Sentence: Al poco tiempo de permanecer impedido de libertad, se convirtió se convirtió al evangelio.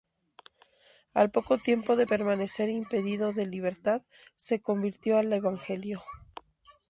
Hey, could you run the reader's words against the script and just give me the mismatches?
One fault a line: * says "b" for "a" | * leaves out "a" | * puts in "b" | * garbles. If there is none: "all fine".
* leaves out "se convirtió"